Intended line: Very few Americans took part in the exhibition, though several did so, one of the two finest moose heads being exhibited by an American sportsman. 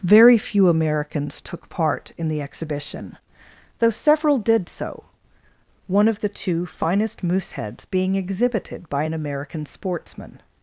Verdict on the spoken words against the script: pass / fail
pass